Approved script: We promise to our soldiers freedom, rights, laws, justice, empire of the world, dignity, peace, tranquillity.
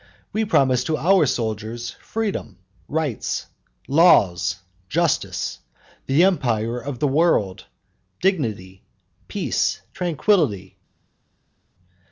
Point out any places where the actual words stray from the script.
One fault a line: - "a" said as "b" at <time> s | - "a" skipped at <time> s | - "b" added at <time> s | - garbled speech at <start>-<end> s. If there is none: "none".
- "the" added at 6.1 s